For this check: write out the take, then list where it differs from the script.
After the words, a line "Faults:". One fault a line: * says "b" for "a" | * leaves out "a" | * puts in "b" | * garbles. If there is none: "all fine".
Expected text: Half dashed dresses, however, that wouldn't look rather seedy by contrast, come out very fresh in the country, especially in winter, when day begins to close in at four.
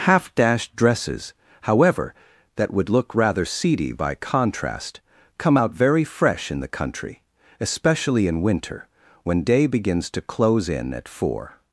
Half dashed dresses, however, that would look rather seedy by contrast, come out very fresh in the country, especially in winter, when day begins to close in at four.
Faults:
* says "would" for "wouldn't"